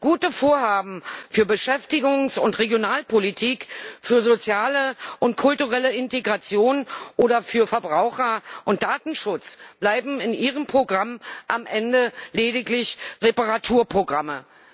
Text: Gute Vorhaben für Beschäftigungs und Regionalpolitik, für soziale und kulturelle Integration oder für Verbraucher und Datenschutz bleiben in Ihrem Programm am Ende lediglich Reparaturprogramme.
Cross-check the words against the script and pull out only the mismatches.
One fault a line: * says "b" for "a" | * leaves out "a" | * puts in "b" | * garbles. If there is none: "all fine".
all fine